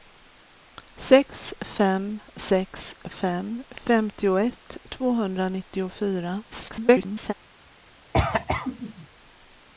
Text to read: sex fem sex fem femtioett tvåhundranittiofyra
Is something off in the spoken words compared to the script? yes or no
yes